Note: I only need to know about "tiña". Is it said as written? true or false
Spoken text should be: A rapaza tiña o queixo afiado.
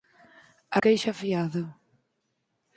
false